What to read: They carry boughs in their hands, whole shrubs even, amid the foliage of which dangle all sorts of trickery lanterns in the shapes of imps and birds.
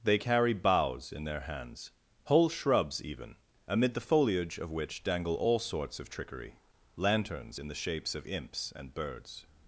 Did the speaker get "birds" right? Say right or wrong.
right